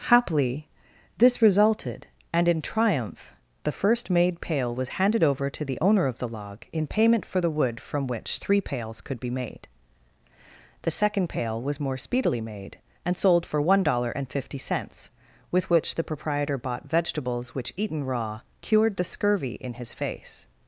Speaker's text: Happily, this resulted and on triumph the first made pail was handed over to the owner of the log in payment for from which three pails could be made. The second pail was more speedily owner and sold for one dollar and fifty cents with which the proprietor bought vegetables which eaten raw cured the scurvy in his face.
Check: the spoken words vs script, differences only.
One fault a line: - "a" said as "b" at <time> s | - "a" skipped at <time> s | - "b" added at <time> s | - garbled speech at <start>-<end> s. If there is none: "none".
- "on" said as "in" at 2.5 s
- "the wood" added at 7.4 s
- "owner" said as "made" at 12.4 s